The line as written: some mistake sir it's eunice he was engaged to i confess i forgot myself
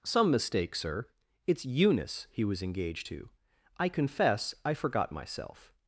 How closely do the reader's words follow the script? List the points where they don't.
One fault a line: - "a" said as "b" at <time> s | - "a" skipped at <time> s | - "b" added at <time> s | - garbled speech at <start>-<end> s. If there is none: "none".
none